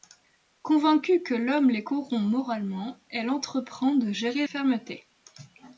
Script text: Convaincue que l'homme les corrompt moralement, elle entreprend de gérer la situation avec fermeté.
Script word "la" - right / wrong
wrong